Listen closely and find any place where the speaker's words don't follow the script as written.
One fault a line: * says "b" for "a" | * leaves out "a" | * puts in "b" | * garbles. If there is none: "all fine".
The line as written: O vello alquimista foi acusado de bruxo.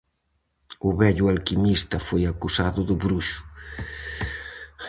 all fine